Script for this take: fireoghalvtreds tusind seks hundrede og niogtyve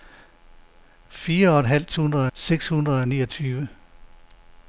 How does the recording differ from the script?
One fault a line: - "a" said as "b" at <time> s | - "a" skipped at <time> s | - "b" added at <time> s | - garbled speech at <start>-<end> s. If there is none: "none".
- "tusind" said as "hundrede" at 1.9 s